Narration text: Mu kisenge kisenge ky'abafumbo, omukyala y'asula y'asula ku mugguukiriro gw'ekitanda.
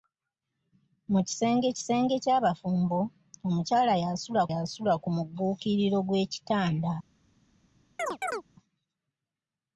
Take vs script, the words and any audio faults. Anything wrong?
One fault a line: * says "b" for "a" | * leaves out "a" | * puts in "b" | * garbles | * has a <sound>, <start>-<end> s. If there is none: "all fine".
* has a chirp, 8.0-8.4 s